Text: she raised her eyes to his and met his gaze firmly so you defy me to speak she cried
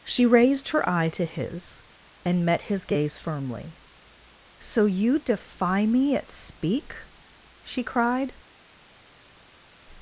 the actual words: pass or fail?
fail